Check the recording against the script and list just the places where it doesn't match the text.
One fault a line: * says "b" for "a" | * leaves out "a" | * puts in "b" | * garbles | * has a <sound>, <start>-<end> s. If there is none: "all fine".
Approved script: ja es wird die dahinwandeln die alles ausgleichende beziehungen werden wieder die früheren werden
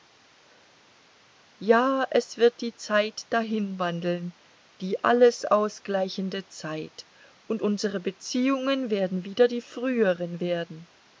* puts in "zeit"
* puts in "zeit und unsere"